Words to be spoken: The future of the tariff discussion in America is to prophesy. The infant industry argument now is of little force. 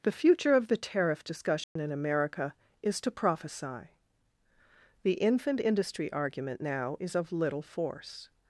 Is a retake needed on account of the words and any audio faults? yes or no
yes